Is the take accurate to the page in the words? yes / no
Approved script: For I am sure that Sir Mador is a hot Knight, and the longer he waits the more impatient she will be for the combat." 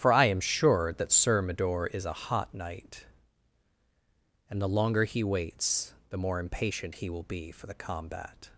no